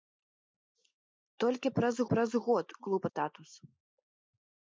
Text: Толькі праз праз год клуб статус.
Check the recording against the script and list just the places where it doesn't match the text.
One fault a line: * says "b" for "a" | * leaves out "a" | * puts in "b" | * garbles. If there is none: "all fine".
all fine